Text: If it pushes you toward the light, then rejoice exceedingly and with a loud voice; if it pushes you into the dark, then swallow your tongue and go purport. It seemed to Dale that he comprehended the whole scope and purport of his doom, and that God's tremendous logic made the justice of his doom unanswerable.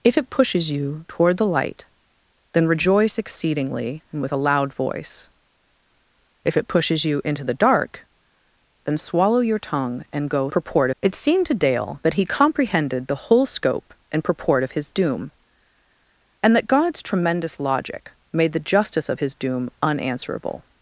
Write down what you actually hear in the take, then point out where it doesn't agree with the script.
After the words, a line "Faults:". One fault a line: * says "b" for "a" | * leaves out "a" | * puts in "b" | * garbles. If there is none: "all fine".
If it pushes you toward the light, then rejoice exceedingly and with a loud voice; if it pushes you into the dark, then swallow your tongue and go purport. It seemed to Dale that he comprehended the whole scope and purport of his doom, and that God's tremendous logic made the justice of his doom unanswerable.
Faults:
all fine